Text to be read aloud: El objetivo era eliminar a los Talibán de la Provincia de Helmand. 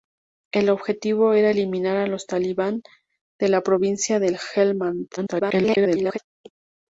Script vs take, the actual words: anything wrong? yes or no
yes